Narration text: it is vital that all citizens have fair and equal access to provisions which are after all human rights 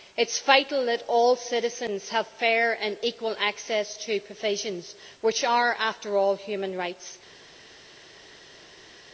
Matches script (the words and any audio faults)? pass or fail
pass